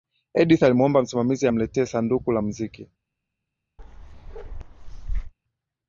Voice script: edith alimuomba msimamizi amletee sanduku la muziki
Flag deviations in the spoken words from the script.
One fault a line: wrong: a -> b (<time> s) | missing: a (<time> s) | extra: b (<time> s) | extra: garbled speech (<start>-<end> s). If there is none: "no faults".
no faults